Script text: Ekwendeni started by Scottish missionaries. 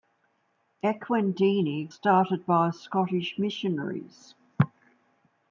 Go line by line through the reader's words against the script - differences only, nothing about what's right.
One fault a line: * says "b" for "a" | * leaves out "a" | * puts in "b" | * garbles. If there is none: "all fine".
all fine